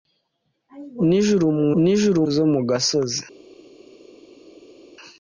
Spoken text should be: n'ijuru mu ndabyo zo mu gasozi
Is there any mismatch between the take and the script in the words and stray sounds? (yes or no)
yes